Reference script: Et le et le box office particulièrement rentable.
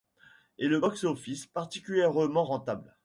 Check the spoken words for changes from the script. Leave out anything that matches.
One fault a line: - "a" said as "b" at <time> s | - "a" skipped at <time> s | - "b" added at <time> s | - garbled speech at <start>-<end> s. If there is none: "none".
- "et le" skipped at 0.8 s